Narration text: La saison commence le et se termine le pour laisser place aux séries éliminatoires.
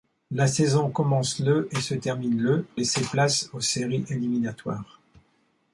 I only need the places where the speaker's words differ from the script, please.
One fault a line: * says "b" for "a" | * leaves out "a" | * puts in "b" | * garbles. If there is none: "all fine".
* leaves out "pour"